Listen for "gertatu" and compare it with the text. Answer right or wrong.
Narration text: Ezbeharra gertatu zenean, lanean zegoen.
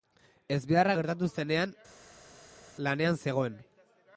right